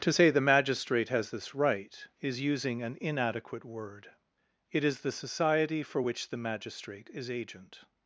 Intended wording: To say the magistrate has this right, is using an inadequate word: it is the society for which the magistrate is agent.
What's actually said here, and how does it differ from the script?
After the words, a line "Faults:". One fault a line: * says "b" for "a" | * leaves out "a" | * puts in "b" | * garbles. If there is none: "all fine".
To say the magistrate has this right, is using an inadequate word: it is the society for which the magistrate is agent.
Faults:
all fine